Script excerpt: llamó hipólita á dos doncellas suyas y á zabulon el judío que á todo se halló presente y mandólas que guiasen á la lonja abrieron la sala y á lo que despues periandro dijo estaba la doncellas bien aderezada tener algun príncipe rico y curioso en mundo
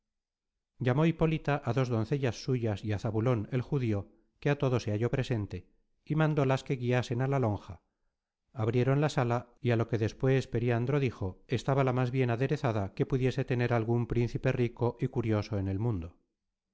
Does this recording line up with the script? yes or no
no